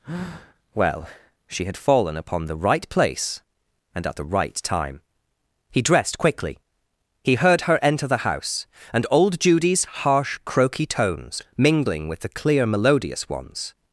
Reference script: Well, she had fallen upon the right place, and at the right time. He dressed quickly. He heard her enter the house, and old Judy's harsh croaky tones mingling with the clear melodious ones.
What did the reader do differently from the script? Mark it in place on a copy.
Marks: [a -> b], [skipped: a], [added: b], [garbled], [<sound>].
Well, she had fallen upon the right place, and at the right time. He dressed quickly. He heard her enter the house, and old Judy's harsh croaky tones mingling with the clear melodious ones.